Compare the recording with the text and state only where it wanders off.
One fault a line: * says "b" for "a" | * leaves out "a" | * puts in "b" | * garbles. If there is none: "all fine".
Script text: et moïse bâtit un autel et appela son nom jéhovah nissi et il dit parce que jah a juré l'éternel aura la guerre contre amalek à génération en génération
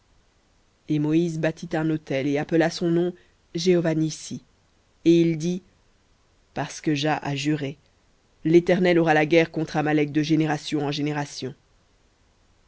* says "de" for "à"